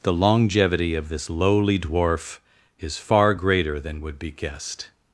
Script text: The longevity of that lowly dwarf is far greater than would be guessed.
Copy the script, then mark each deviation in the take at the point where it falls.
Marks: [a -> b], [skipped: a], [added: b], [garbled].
The longevity of [that -> this] lowly dwarf is far greater than would be guessed.